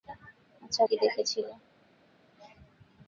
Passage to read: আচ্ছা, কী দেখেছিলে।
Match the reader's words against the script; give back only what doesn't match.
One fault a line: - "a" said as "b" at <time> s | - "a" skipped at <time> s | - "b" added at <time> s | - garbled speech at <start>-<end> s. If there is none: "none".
none